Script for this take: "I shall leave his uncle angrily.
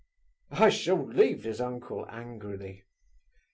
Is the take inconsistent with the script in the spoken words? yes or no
no